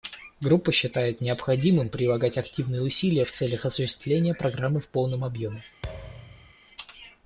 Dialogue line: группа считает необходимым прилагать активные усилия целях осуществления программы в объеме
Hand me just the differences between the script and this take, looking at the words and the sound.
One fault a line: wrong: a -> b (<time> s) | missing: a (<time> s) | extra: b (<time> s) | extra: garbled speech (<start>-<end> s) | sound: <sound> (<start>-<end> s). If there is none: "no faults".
extra: в (3.2 s)
extra: полном (4.9 s)
sound: thud (5.8-6.5 s)